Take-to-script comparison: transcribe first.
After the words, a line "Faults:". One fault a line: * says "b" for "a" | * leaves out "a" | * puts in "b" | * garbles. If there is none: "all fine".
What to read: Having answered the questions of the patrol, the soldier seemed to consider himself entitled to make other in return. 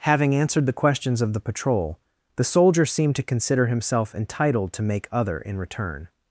Having answered the questions of the patrol, the soldier seemed to consider himself entitled to make other in return.
Faults:
all fine